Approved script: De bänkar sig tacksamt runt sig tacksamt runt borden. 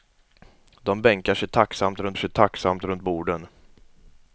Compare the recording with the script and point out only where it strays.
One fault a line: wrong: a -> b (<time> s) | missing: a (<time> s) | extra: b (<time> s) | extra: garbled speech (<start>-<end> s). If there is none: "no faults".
no faults